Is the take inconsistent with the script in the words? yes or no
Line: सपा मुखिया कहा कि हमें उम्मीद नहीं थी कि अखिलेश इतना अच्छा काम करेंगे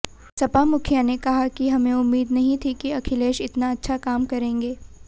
yes